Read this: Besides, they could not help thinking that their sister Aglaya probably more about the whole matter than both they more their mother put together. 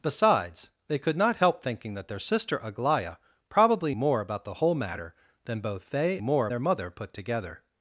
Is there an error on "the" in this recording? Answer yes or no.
no